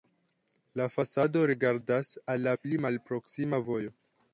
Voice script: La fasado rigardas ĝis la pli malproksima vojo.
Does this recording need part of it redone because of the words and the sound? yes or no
yes